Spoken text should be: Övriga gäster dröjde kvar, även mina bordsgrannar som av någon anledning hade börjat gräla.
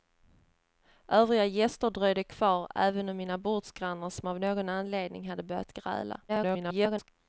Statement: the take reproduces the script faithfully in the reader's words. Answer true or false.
false